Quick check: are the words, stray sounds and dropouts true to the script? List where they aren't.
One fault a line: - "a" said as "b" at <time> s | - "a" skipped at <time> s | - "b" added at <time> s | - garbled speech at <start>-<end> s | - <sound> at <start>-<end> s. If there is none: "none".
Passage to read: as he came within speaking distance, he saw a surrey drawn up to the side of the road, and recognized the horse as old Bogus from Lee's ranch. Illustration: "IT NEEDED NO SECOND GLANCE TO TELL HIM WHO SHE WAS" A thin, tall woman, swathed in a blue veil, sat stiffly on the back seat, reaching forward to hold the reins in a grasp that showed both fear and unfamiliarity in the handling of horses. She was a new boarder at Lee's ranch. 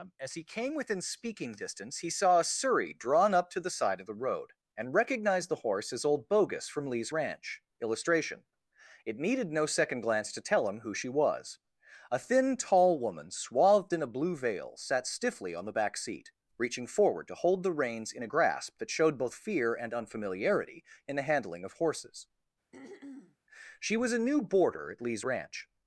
- throat clearing at 22.7-23.4 s